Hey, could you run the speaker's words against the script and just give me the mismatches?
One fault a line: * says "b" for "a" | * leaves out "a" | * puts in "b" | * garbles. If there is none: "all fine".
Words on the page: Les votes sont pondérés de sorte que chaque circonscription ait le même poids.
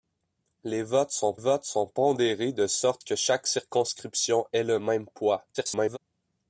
* puts in "votes sont"
* garbles